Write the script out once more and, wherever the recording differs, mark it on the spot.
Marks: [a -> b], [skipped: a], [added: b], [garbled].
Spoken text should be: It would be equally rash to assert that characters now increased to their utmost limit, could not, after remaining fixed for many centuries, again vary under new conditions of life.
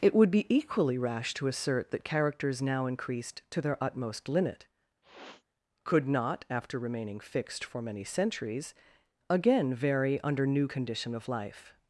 It would be equally rash to assert that characters now increased to their utmost limit, could not, after remaining fixed for many centuries, again vary under new [conditions -> condition] of life.